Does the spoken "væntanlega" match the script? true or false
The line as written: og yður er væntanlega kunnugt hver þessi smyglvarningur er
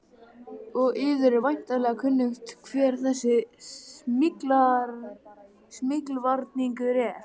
true